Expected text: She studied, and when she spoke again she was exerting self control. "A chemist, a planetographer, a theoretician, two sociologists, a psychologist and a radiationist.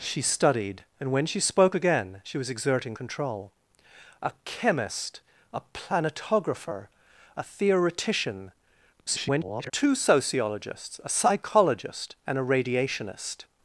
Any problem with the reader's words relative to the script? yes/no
yes